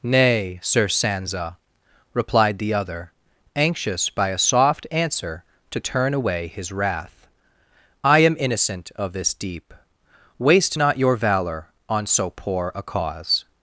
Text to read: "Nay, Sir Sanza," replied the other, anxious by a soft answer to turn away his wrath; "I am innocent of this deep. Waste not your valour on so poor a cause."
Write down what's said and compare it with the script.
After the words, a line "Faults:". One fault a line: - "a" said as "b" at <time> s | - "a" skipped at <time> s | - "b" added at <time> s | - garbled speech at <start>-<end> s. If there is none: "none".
"Nay, Sir Sanza," replied the other, anxious by a soft answer to turn away his wrath; "I am innocent of this deep. Waste not your valour on so poor a cause."
Faults:
none